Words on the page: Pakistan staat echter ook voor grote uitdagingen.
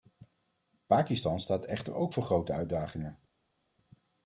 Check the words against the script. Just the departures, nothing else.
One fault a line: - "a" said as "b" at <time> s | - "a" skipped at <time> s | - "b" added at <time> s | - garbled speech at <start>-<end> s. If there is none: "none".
none